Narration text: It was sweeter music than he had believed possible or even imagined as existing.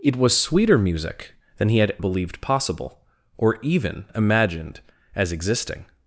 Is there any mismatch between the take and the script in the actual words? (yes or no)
no